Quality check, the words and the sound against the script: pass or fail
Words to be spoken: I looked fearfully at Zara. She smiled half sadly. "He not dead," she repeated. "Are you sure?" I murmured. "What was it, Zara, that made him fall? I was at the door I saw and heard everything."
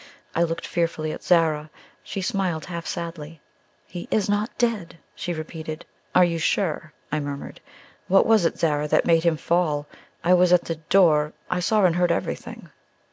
fail